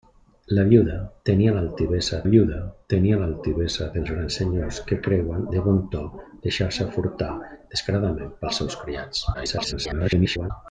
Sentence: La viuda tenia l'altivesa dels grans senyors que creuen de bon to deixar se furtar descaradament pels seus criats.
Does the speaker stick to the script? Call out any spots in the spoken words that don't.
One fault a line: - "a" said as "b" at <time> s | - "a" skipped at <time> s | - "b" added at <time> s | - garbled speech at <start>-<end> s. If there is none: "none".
- "viuda tenia l'altivesa" added at 2.3 s
- garbled speech at 9.3-10.5 s